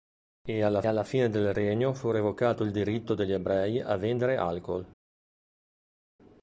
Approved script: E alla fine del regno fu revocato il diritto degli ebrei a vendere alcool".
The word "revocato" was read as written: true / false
true